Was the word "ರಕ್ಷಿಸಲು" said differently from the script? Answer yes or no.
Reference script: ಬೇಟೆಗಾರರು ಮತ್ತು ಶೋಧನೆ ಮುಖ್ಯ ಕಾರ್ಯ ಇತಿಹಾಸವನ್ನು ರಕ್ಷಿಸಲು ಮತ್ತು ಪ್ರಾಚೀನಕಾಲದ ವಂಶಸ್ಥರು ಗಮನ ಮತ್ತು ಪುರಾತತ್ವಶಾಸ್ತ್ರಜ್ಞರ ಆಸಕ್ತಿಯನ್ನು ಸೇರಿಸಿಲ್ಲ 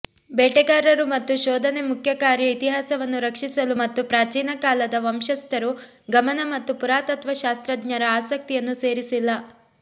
no